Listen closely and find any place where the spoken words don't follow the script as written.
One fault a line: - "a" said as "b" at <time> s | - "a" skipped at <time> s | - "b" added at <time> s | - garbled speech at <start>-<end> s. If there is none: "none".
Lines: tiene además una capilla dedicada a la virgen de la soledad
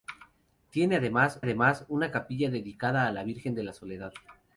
- "además" added at 1.4 s